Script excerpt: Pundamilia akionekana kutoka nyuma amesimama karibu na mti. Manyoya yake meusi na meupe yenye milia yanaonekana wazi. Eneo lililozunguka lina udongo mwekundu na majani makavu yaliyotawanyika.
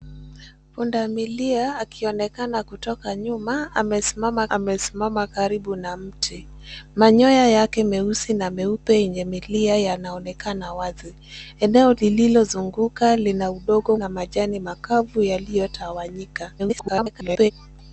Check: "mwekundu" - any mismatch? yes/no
yes